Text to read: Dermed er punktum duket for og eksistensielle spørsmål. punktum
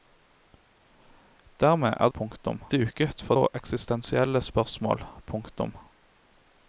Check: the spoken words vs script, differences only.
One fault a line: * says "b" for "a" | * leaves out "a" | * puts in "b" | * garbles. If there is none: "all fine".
all fine